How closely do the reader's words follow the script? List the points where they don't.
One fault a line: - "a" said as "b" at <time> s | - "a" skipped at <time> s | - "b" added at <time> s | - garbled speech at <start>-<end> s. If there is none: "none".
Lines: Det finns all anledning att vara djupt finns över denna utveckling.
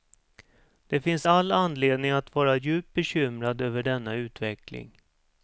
- "finns" said as "bekymrad" at 2.9 s